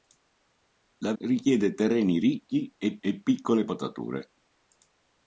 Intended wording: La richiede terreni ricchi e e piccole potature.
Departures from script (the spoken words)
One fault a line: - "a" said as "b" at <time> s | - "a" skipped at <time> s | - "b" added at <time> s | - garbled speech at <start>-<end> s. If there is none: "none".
none